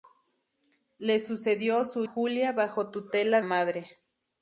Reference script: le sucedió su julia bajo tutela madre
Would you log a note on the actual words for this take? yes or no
no